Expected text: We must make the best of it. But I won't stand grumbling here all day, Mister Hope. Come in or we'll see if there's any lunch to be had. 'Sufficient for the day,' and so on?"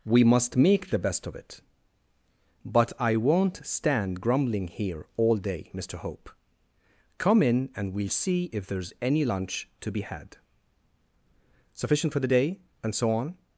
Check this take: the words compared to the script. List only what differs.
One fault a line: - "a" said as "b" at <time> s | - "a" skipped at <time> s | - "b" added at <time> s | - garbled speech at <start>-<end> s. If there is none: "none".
- "or" said as "and" at 7.8 s